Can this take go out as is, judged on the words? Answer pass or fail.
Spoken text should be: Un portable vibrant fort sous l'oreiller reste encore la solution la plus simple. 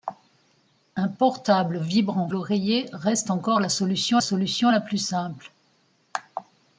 fail